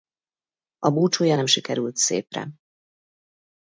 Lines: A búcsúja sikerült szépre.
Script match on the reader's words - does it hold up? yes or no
no